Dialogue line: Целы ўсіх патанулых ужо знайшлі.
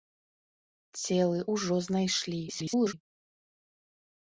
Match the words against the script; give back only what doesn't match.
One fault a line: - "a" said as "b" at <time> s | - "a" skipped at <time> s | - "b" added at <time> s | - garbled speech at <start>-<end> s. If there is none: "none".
- "ўсіх патанулых" skipped at 1.4 s
- garbled speech at 2.5-2.9 s